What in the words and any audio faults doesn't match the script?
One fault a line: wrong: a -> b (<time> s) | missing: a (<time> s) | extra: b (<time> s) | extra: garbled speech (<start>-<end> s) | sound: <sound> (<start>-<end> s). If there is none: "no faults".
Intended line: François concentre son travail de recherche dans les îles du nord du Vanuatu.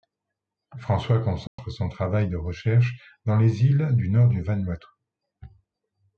sound: dropout (1.5-1.6 s)